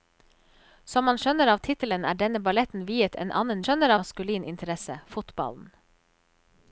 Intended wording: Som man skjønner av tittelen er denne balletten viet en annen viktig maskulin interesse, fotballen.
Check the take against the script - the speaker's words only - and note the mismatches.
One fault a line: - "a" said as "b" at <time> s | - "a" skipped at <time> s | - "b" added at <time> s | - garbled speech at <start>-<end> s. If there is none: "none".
- "viktig" said as "skjønner" at 3.7 s